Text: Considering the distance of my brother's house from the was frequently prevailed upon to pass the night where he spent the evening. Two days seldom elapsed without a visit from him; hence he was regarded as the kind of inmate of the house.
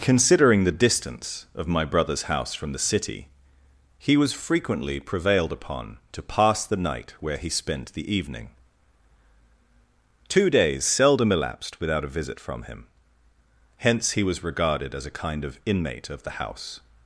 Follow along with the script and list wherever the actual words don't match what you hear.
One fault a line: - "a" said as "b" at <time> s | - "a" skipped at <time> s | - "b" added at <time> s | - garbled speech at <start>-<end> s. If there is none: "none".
- "city he" added at 2.8 s
- "the" said as "a" at 15.1 s